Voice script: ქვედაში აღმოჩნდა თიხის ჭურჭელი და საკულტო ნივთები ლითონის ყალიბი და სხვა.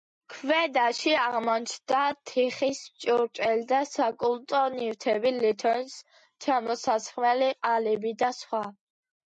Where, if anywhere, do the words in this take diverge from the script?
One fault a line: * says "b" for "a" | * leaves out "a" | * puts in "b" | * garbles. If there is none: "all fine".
* puts in "ჩამოსასხმელი"